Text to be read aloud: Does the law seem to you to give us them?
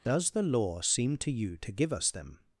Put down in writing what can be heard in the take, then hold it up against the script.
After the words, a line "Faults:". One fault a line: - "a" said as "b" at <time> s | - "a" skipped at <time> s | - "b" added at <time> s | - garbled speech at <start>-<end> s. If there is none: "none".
Does the law seem to you to give us them?
Faults:
none